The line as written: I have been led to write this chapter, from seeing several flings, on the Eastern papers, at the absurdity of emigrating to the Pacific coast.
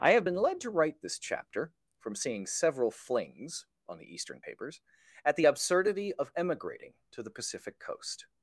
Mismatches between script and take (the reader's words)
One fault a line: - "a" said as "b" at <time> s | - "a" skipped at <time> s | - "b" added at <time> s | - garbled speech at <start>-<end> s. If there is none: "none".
none